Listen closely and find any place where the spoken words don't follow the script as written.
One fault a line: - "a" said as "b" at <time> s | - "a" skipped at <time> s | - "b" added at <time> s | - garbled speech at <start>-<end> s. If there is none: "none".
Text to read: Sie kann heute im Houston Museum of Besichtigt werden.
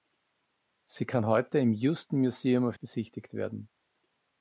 none